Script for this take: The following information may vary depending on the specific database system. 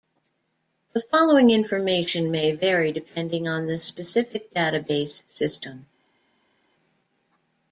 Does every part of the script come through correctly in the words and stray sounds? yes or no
yes